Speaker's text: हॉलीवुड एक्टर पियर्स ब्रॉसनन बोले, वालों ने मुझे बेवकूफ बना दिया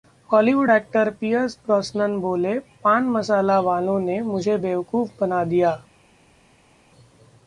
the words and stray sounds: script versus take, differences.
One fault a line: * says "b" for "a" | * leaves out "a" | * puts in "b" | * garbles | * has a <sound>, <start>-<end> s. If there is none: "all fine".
* puts in "पान मसाला"